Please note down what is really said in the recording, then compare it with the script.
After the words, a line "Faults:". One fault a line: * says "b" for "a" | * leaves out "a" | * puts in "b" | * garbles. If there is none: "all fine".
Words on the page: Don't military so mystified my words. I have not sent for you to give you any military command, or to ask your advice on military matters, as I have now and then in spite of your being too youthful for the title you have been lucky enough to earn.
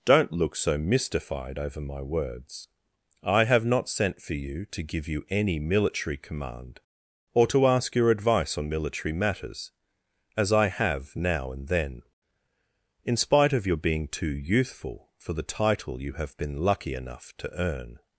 Don't look so mystified over my words. I have not sent for you to give you any military command, or to ask your advice on military matters, as I have now and then in spite of your being too youthful for the title you have been lucky enough to earn.
Faults:
* says "look" for "military"
* puts in "over"